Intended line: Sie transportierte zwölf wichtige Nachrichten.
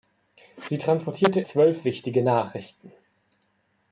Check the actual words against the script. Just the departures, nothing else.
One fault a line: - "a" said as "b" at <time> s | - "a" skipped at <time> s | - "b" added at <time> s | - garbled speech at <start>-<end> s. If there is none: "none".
none